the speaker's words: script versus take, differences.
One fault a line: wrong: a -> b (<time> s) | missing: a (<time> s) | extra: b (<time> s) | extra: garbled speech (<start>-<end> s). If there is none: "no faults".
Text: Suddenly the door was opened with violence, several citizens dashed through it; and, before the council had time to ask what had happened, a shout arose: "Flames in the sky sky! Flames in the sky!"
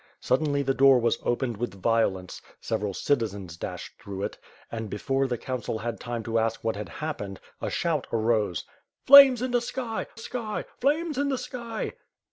no faults